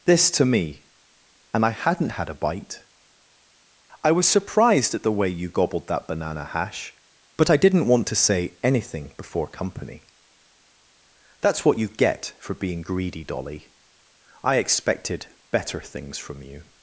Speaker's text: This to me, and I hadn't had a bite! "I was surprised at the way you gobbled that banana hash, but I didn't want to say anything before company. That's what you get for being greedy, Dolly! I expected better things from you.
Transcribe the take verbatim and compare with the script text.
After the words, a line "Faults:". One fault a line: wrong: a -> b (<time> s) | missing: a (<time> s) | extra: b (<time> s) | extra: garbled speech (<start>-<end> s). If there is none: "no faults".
This to me, and I hadn't had a bite! "I was surprised at the way you gobbled that banana hash, but I didn't want to say anything before company. That's what you get for being greedy, Dolly! I expected better things from you.
Faults:
no faults